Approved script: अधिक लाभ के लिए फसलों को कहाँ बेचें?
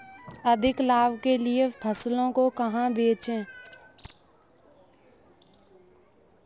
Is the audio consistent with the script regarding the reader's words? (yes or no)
yes